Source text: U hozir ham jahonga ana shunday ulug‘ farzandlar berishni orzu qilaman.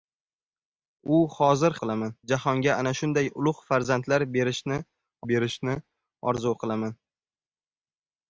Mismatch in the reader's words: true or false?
true